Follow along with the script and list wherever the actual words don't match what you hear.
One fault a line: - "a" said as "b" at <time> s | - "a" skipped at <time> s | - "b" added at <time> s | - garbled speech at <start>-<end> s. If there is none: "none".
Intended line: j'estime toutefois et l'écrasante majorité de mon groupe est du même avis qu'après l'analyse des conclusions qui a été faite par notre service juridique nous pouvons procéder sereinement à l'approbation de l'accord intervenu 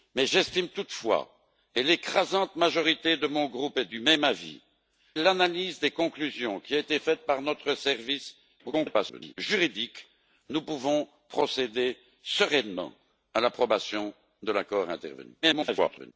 - "qu'après" skipped at 4.6 s
- garbled speech at 8.6-9.4 s
- garbled speech at 15.4-16.1 s